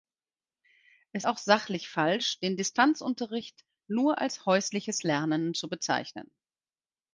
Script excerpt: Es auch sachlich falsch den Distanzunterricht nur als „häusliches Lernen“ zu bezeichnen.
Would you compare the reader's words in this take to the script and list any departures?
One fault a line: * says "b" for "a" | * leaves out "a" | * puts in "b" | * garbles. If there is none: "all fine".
all fine